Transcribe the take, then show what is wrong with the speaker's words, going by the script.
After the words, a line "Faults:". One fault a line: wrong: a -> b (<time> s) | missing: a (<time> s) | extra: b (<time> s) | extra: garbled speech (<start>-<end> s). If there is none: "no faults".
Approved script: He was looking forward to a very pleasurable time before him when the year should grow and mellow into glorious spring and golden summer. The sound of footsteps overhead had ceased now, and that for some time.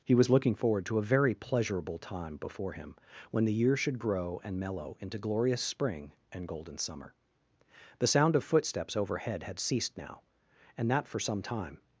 He was looking forward to a very pleasurable time before him when the year should grow and mellow into glorious spring and golden summer. The sound of footsteps overhead had ceased now, and that for some time.
Faults:
no faults